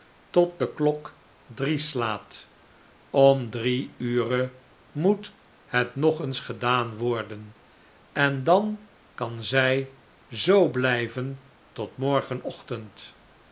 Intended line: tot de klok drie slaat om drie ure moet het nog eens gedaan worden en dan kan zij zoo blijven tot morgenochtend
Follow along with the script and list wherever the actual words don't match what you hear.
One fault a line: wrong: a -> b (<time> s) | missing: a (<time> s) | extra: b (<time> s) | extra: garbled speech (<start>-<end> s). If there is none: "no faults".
no faults